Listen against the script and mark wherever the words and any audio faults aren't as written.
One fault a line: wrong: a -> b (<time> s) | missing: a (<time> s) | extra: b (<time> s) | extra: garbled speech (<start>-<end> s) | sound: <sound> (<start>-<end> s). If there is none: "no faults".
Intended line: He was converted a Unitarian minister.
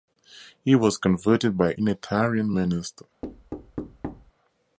extra: by (1.6 s)
sound: thud (3.2-4.3 s)